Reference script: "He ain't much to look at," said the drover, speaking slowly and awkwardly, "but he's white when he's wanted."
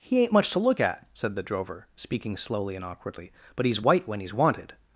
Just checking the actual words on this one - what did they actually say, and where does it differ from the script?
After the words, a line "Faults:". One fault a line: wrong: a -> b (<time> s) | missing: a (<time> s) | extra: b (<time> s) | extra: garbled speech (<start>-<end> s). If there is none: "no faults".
"He ain't much to look at," said the drover, speaking slowly and awkwardly, "but he's white when he's wanted."
Faults:
no faults